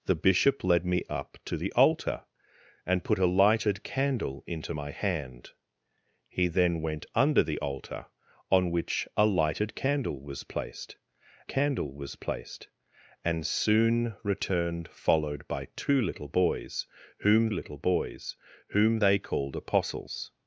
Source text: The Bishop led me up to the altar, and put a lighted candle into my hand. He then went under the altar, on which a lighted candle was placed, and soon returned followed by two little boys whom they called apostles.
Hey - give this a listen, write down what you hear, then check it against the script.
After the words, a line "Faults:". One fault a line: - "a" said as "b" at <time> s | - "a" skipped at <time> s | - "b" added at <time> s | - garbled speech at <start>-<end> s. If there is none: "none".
The Bishop led me up to the altar, and put a lighted candle into my hand. He then went under the altar, on which a lighted candle was placed candle was placed, and soon returned followed by two little boys whom little boys whom they called apostles.
Faults:
- "candle was placed" added at 11.5 s
- "little boys whom" added at 17.5 s